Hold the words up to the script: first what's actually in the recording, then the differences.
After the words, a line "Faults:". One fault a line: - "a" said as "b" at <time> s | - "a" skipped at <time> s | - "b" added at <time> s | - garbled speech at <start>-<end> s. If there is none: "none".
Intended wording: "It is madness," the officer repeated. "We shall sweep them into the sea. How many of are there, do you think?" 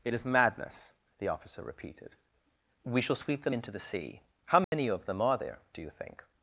"It is madness," the officer repeated. "We shall sweep them into the sea. How many of them are there, do you think?"
Faults:
- "them" added at 5.1 s